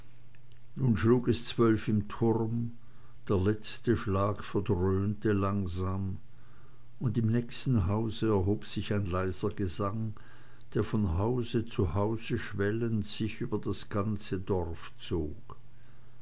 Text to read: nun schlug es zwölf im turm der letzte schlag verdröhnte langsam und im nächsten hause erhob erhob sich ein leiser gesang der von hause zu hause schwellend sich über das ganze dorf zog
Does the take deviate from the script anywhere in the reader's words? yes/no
yes